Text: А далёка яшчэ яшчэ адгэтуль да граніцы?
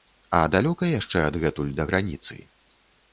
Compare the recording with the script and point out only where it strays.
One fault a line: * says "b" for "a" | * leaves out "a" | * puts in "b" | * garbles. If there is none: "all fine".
* leaves out "яшчэ"